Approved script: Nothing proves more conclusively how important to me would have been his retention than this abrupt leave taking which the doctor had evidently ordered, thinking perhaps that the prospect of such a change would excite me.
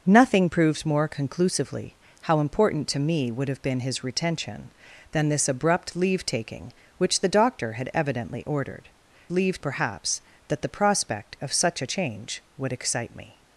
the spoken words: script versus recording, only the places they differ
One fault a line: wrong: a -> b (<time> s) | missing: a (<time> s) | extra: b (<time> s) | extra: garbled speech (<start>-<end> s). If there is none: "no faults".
wrong: thinking -> leave (9.3 s)